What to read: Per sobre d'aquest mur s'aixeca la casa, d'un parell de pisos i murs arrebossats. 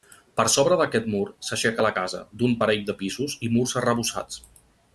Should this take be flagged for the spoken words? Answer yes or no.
no